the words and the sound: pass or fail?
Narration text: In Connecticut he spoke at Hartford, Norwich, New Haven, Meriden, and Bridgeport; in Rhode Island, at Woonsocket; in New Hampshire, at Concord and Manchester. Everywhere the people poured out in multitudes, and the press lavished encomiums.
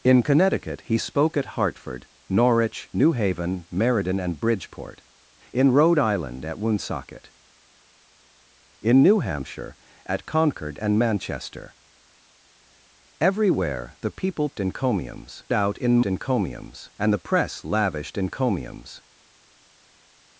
fail